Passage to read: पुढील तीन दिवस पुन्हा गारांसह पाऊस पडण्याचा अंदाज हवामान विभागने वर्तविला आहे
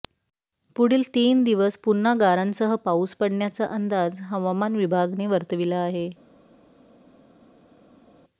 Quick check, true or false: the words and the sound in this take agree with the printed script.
true